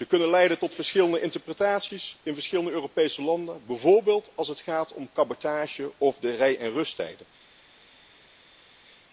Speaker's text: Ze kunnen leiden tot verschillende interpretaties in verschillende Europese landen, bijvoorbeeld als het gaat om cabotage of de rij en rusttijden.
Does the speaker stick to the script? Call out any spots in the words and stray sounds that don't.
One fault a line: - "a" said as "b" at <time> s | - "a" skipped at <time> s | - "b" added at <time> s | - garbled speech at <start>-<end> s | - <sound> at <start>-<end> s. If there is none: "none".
none